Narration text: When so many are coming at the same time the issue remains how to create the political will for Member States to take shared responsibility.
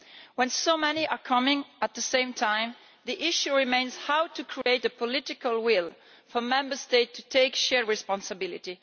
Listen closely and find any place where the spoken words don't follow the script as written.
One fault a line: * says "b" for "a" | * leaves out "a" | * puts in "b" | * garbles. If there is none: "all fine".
all fine